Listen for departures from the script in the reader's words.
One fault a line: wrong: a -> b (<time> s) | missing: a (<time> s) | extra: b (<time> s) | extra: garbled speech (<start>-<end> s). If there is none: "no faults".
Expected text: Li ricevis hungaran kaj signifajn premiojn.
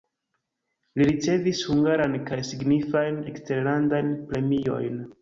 extra: eksterlandajn (3.3 s)